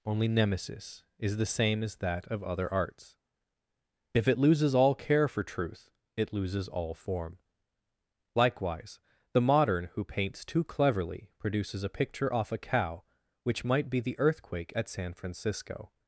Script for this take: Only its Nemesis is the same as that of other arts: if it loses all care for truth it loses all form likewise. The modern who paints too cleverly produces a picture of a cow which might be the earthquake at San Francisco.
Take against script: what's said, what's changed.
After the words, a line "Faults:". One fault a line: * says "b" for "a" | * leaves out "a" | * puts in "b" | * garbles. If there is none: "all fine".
Only Nemesis is the same as that of other arts: if it loses all care for truth it loses all form likewise. The modern who paints too cleverly produces a picture off a cow which might be the earthquake at San Francisco.
Faults:
* leaves out "its"
* says "off" for "of"